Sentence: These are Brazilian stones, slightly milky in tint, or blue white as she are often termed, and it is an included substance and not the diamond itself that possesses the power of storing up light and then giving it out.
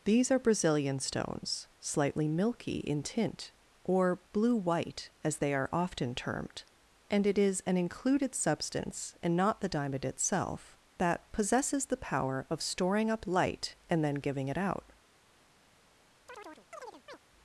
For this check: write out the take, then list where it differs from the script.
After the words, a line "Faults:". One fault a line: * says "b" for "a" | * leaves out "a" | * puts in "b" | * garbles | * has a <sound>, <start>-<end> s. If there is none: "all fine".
These are Brazilian stones, slightly milky in tint, or blue white as they are often termed, and it is an included substance and not the diamond itself that possesses the power of storing up light and then giving it out.
Faults:
* says "they" for "she"
* has a chirp, 16.3-17.2 s